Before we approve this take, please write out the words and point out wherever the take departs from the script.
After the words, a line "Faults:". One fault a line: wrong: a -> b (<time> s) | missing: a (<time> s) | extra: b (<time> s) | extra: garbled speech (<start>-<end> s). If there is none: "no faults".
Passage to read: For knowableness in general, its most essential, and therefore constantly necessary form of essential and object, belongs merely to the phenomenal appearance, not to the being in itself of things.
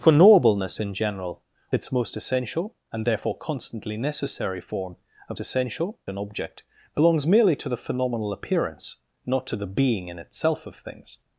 For knowableness in general, its most essential, and therefore constantly necessary form of essential and object, belongs merely to the phenomenal appearance, not to the being in itself of things.
Faults:
no faults